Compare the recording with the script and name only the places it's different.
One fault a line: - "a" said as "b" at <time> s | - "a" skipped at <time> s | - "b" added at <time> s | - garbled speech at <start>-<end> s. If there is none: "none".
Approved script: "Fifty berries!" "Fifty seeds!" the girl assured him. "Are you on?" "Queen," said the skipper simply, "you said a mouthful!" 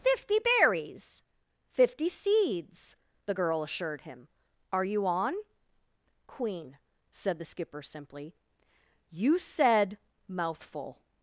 - "a" skipped at 10.0 s